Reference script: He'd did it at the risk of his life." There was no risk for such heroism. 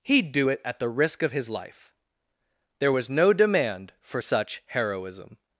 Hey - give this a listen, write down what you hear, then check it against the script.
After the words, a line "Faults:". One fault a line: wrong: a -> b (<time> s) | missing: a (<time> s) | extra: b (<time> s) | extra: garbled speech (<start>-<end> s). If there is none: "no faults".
He'd do it at the risk of his life." There was no demand for such heroism.
Faults:
wrong: did -> do (0.3 s)
wrong: risk -> demand (3.3 s)